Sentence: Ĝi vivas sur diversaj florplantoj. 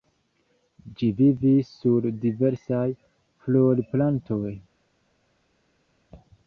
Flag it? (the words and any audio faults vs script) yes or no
no